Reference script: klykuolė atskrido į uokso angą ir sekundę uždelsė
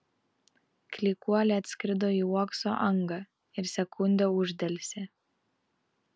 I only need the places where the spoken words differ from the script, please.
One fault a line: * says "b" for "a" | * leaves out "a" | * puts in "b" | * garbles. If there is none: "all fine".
all fine